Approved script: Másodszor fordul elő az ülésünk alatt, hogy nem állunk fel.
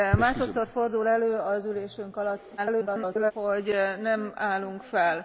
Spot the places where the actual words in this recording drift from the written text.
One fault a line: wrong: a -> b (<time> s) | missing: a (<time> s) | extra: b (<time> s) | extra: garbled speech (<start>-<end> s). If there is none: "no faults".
extra: garbled speech (2.6-3.3 s)